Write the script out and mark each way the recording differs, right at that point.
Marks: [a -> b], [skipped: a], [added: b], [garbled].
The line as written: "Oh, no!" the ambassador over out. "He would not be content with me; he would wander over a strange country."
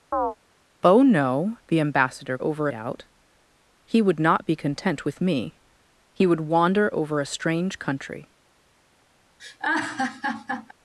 "Oh, no!" the ambassador over out. "He would not be content with me; he would wander over a strange country."